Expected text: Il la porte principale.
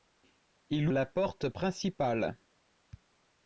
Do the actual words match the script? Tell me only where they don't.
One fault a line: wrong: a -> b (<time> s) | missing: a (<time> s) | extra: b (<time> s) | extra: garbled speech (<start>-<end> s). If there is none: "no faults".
no faults